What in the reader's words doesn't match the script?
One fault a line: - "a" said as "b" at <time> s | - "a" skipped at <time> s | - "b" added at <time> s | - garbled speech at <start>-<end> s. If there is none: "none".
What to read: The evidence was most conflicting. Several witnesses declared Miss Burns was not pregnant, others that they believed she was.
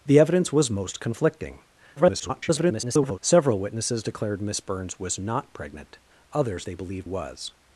- garbled speech at 2.0-3.2 s
- "that" skipped at 6.6 s
- "she" skipped at 7.1 s